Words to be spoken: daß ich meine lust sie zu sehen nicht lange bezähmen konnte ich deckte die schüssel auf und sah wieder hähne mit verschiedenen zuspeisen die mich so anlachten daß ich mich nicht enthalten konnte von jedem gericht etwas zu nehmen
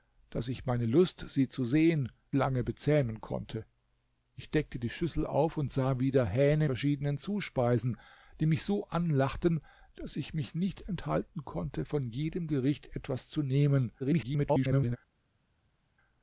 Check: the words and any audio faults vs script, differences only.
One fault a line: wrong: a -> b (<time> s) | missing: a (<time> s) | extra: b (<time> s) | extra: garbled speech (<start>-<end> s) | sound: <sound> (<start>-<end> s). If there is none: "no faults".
missing: nicht (2.1 s)
missing: mit (6.7 s)
extra: garbled speech (14.0-15.0 s)